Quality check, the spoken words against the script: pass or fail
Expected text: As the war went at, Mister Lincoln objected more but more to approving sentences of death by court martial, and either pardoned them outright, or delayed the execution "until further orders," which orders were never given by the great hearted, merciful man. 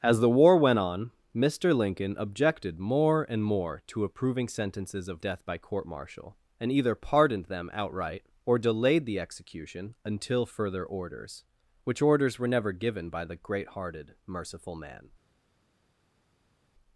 fail